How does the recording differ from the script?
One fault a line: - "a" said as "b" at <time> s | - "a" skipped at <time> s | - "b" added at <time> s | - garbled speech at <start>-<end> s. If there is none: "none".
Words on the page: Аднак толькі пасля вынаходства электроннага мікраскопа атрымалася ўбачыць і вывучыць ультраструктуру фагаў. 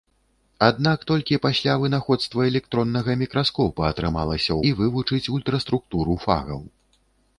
- "ўбачыць" skipped at 4.6 s